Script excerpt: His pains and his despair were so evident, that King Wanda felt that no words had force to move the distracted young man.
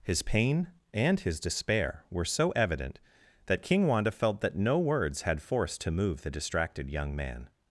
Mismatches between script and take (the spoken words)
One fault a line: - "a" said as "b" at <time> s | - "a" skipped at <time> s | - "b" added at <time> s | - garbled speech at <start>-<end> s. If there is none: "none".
- "pains" said as "pain" at 0.2 s